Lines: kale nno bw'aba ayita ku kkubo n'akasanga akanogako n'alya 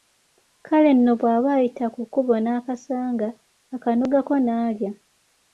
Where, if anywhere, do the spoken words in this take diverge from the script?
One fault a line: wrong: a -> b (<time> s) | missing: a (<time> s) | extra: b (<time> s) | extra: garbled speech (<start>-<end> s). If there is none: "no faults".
no faults